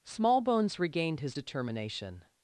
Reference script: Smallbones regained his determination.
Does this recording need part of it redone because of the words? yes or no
no